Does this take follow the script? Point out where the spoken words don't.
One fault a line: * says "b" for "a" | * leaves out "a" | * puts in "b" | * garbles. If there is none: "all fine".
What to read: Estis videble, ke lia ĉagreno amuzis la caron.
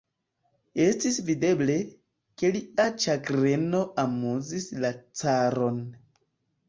all fine